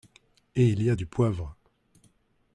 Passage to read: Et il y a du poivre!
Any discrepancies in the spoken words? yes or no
no